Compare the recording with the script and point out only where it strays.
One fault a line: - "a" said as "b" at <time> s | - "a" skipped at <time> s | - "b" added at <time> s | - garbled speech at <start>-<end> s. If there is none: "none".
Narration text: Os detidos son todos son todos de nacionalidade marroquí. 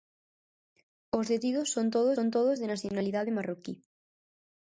none